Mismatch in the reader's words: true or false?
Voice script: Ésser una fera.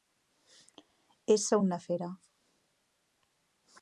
false